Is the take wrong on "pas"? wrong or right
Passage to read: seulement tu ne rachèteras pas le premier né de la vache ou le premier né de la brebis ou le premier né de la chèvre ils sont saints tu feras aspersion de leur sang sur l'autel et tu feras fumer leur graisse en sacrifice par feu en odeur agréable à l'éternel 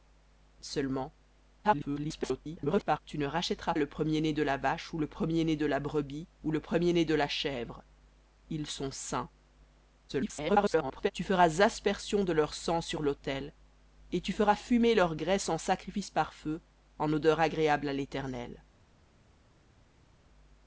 wrong